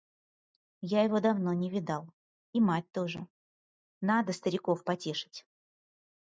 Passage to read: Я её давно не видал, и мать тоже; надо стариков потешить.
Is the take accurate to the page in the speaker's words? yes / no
no